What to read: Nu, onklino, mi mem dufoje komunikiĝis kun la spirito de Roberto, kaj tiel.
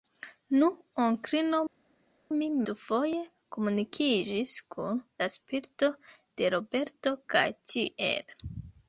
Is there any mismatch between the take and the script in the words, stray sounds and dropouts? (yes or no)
yes